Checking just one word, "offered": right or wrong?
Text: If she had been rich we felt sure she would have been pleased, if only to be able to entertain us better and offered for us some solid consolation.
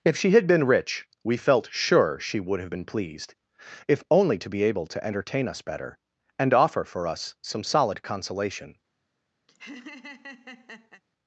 wrong